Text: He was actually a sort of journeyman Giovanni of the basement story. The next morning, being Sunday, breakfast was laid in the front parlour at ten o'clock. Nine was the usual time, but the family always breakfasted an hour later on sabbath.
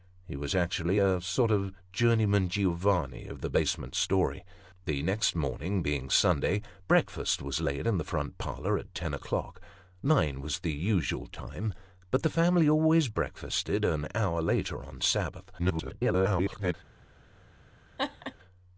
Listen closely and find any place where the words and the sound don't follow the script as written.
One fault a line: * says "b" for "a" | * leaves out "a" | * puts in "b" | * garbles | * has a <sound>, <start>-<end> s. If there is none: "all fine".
* garbles
* has a laugh, 18.0-18.3 s